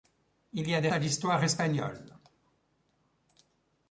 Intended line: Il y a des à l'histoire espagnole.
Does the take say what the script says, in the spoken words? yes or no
yes